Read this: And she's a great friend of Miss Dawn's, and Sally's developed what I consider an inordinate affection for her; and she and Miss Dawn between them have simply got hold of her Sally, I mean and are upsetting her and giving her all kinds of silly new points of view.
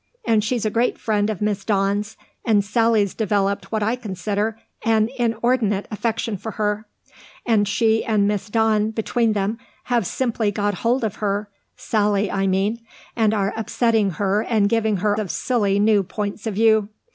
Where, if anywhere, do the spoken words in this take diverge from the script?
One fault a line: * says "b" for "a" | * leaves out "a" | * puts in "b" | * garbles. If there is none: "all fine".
* leaves out "all kinds"